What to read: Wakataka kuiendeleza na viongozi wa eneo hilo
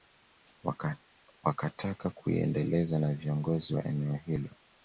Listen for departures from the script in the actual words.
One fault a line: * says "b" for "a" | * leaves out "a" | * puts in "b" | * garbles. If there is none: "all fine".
all fine